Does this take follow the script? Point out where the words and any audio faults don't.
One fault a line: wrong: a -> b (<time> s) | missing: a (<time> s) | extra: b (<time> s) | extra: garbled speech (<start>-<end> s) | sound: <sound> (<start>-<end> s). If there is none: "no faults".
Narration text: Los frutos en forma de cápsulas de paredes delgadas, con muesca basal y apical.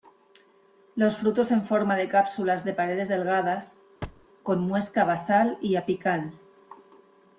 sound: thud (4.0-4.3 s)